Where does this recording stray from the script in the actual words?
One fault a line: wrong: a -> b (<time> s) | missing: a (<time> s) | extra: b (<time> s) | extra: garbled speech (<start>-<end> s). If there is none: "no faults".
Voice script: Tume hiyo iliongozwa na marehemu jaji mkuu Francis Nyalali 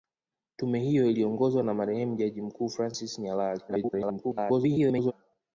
extra: garbled speech (3.7-5.1 s)